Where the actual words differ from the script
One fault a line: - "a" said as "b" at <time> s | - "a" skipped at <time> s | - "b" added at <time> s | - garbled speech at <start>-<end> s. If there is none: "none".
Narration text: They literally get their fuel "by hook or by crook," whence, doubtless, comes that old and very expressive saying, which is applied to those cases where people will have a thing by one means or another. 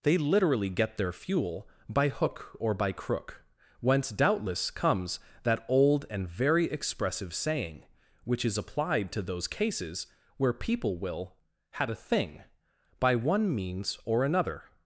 - "have" said as "had" at 11.7 s